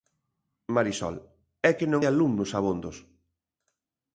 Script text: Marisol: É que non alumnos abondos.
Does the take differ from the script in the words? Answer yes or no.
no